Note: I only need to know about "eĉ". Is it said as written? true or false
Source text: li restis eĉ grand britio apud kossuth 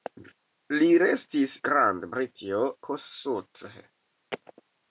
false